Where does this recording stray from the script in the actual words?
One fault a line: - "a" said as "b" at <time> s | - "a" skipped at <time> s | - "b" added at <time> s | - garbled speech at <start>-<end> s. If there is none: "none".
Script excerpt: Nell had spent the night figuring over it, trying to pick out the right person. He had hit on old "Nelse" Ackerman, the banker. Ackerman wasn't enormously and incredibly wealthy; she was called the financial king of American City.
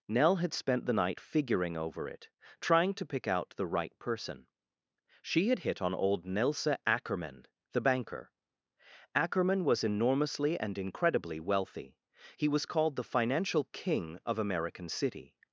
- "He" said as "She" at 5.2 s
- "wasn't" said as "was" at 9.6 s
- "she" said as "he" at 12.4 s